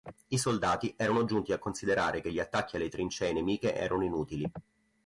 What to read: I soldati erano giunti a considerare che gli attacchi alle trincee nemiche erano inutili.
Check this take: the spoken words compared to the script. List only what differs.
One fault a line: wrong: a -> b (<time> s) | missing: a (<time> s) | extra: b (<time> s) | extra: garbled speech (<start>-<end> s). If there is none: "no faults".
no faults